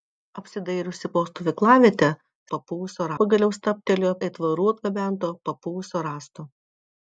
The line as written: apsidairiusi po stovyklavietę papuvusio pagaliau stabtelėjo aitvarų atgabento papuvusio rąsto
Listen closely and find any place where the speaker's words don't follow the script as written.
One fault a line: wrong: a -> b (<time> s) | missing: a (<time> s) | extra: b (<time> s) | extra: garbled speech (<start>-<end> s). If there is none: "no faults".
no faults